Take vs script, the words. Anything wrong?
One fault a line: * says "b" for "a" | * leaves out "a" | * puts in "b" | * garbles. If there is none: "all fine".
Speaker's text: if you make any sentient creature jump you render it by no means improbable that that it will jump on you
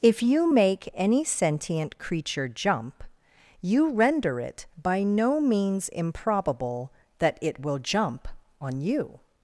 * leaves out "that"